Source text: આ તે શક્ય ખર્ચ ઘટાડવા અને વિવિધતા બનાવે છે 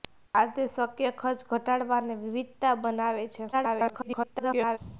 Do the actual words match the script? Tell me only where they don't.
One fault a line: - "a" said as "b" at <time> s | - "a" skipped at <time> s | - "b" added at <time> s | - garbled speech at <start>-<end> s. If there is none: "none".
- garbled speech at 3.5-4.8 s